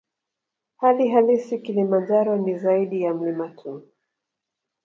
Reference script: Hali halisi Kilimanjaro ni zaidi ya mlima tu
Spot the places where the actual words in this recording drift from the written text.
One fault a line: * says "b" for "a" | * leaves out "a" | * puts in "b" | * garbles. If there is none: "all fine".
all fine